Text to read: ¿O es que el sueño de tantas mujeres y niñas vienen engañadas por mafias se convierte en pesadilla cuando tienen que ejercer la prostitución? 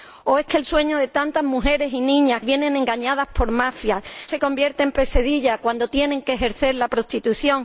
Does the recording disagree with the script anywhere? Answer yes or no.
no